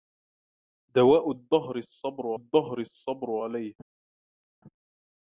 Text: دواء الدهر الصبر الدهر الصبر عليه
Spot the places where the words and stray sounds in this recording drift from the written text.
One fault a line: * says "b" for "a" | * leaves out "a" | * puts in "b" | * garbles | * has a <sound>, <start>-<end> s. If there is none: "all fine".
all fine